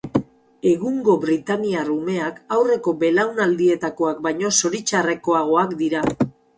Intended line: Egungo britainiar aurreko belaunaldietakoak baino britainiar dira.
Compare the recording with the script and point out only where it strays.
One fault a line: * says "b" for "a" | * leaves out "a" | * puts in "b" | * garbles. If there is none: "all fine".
* puts in "umeak"
* says "zoritxarrekoagoak" for "britainiar"